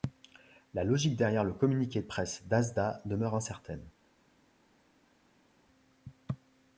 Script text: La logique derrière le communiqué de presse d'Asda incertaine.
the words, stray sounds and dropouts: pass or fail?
fail